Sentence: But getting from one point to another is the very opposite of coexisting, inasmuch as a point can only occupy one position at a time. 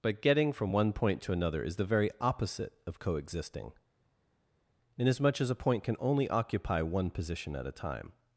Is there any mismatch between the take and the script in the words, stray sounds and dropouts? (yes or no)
no